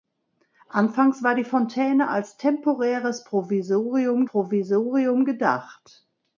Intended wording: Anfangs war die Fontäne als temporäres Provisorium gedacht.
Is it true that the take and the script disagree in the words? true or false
true